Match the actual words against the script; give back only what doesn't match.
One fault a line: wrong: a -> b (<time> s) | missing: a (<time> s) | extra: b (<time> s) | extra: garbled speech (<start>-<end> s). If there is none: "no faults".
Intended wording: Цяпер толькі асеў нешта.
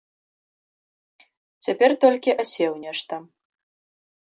no faults